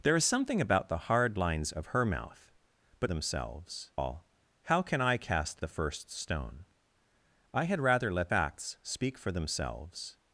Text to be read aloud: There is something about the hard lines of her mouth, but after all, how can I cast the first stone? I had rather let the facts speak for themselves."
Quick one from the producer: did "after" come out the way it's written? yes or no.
no